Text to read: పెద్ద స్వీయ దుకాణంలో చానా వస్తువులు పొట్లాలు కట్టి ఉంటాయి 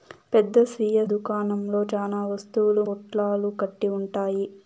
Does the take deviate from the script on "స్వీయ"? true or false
false